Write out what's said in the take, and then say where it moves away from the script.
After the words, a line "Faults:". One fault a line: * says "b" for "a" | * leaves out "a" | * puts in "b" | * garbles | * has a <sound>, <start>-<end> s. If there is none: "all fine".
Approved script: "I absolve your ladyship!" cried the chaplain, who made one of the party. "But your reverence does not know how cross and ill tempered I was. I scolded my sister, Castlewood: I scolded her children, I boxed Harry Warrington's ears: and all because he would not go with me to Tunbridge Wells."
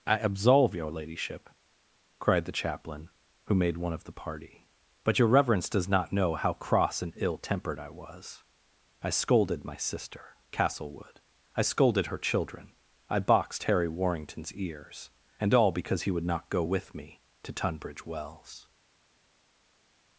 "I absolve your ladyship!" cried the chaplain, who made one of the party. "But your reverence does not know how cross and ill tempered I was. I scolded my sister, Castlewood: I scolded her children, I boxed Harry Warrington's ears: and all because he would not go with me to Tunbridge Wells."
Faults:
all fine